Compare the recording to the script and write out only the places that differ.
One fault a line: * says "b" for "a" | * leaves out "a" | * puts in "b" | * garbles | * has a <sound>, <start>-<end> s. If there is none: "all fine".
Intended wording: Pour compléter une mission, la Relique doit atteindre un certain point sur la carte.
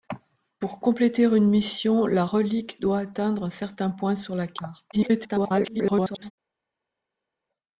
* garbles